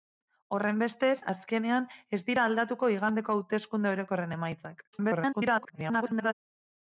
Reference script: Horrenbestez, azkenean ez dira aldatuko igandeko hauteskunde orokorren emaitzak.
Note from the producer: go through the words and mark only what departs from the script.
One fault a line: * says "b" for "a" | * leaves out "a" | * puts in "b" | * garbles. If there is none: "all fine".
* garbles